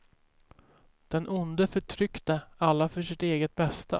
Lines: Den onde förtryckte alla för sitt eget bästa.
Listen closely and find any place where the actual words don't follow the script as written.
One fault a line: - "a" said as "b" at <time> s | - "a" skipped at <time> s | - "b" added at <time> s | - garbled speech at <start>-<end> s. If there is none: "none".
none